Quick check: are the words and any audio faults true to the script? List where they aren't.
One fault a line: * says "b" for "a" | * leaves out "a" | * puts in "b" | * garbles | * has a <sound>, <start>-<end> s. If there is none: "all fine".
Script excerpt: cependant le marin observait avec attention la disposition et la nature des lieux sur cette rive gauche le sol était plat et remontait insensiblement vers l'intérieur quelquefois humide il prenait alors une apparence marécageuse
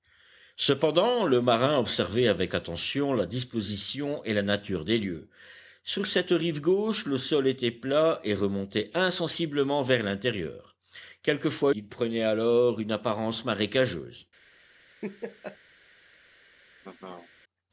* leaves out "humide"
* has a laugh, 15.0-15.6 s
* has a laugh, 16.8-17.3 s